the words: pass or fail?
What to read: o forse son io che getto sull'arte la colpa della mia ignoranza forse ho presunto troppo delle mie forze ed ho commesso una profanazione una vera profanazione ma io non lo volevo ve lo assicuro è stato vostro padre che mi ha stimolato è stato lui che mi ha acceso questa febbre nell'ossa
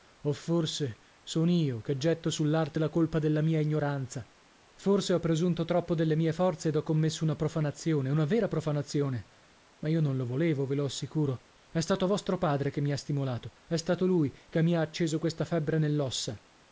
pass